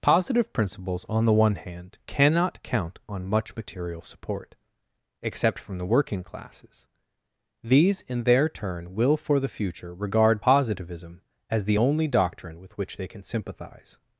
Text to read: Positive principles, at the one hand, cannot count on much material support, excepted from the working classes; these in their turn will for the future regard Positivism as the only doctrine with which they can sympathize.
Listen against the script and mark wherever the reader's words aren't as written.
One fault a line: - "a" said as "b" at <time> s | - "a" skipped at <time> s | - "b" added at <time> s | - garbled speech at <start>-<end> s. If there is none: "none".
- "at" said as "on" at 1.1 s
- "excepted" said as "except" at 5.2 s